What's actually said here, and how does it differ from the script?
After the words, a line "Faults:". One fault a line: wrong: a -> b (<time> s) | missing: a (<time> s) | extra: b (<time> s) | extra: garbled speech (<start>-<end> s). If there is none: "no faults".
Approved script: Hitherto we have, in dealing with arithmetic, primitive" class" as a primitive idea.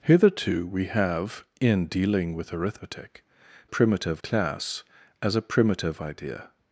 Hitherto we have, in dealing with arithmetic, primitive" class" as a primitive idea.
Faults:
no faults